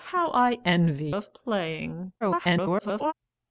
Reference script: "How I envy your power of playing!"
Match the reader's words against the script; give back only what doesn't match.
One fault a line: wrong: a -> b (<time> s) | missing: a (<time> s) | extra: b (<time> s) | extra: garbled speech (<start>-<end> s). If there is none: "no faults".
missing: your power (1.1 s)
extra: garbled speech (2.2-3.1 s)